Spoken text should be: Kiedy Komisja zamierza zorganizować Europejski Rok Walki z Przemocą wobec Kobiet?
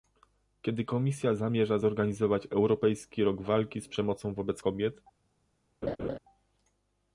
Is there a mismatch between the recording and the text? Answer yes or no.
no